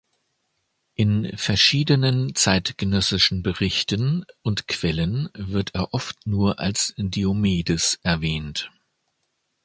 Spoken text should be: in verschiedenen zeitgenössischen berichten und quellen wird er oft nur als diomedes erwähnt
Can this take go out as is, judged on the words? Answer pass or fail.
pass